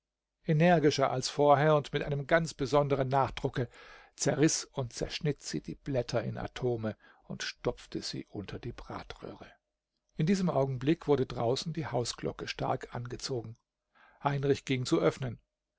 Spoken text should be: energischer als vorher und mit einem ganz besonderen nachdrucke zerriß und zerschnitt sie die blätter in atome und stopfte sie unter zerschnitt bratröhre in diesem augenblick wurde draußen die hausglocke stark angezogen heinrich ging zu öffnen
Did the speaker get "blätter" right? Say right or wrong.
right